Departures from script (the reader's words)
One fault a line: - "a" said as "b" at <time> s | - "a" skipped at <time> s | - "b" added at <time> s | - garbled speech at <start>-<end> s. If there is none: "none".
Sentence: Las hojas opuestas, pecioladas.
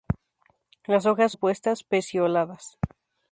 none